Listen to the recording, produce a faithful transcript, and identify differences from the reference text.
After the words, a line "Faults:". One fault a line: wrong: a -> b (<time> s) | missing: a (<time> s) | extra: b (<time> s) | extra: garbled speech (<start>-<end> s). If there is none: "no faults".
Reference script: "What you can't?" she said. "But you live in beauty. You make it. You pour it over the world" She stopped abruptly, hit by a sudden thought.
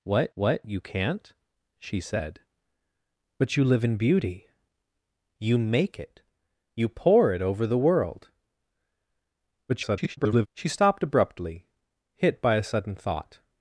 "What what you can't?" she said. "But you live in beauty. You make it. You pour it over the world" [garbled] She stopped abruptly, hit by a sudden thought.
Faults:
extra: what (0.3 s)
extra: garbled speech (9.7-10.5 s)